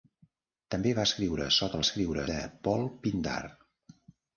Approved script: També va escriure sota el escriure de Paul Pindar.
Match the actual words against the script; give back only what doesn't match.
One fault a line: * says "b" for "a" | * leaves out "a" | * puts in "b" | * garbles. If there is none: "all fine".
all fine